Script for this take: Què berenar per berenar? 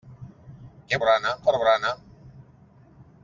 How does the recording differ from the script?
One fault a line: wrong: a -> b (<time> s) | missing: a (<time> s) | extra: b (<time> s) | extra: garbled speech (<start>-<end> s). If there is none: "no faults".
no faults